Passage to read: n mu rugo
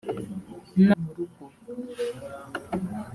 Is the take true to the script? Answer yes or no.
yes